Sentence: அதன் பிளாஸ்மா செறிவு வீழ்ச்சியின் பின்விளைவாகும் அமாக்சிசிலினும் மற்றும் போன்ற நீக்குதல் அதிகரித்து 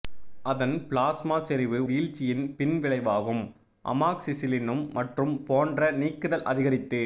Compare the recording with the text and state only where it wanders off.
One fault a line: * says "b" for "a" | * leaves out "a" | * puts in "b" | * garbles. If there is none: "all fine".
all fine